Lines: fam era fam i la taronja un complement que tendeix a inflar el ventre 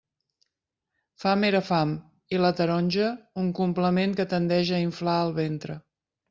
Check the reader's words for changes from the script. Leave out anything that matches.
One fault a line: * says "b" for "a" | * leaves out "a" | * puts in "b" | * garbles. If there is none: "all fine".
all fine